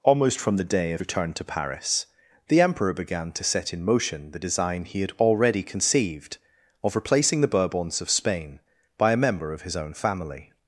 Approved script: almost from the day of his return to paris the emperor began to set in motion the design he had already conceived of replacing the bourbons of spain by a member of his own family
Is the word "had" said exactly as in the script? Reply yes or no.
yes